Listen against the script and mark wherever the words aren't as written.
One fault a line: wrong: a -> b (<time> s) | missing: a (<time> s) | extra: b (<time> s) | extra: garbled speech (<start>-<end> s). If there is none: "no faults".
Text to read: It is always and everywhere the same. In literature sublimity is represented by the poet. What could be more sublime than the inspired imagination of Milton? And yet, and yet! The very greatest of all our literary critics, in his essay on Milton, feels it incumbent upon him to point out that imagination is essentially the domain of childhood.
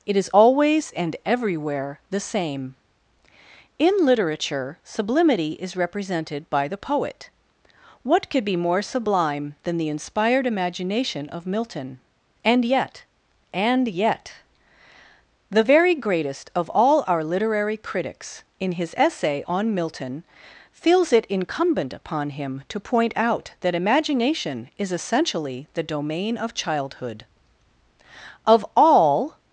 extra: Of all (28.5 s)